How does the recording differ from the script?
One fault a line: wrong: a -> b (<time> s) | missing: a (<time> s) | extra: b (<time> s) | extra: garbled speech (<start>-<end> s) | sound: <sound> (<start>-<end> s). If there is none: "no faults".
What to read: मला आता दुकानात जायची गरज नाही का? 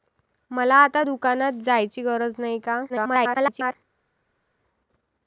extra: garbled speech (2.9-3.8 s)